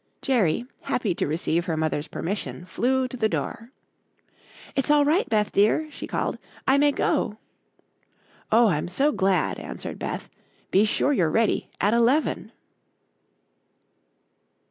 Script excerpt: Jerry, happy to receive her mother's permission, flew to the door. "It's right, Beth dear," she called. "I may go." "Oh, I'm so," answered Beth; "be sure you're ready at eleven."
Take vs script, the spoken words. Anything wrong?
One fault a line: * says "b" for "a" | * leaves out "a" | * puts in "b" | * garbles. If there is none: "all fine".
* puts in "all"
* puts in "glad"